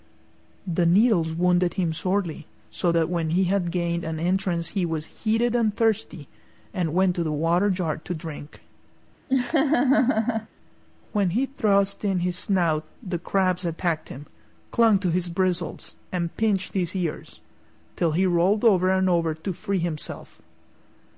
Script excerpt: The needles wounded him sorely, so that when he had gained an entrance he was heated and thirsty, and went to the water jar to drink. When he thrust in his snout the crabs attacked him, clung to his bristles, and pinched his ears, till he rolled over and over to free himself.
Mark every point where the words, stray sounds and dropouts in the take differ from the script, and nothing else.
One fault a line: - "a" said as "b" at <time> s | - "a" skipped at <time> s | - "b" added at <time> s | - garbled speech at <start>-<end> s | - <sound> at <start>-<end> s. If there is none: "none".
- laugh at 9.3-10.5 s